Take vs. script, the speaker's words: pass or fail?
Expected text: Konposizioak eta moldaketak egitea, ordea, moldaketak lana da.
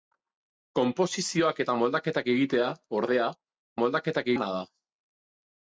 pass